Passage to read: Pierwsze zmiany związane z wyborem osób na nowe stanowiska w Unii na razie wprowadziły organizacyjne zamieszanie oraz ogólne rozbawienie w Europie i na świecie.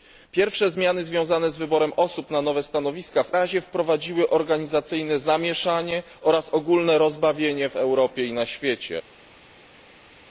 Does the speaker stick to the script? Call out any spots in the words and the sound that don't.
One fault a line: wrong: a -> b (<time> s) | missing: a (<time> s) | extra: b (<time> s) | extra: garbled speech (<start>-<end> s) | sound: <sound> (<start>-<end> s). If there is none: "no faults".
missing: Unii na (3.4 s)